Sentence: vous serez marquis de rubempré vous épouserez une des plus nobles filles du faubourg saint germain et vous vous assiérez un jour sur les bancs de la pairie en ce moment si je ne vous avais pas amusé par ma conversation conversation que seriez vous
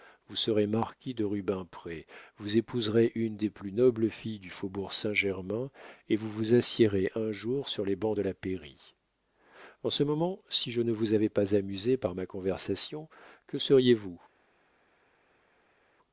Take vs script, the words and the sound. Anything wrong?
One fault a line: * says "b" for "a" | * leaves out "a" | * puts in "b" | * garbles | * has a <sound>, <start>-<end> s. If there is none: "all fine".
* leaves out "conversation"